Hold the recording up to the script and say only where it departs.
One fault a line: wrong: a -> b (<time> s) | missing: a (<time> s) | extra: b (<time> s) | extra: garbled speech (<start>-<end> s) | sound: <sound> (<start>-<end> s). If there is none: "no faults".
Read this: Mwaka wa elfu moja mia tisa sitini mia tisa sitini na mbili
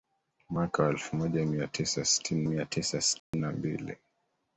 sound: dropout (3.2-3.3 s)